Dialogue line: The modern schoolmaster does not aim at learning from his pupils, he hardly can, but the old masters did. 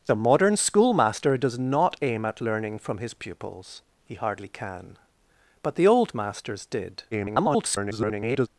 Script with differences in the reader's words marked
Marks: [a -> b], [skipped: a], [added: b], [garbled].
The modern schoolmaster does not aim at learning from his pupils, he hardly can, but the old masters did. [garbled]